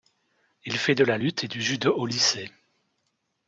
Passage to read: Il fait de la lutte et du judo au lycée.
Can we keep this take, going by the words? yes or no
yes